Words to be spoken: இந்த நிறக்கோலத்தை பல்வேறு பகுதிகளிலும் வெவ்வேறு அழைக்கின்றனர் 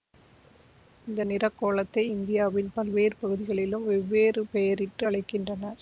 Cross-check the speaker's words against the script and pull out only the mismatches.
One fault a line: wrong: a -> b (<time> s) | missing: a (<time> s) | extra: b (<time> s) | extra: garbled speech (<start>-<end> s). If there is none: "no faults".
extra: இந்தியாவின் (2.1 s)
extra: பெயரிட்டு (4.5 s)